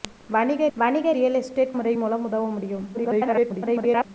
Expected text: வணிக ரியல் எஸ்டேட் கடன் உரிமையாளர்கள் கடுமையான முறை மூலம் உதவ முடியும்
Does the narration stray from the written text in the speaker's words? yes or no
yes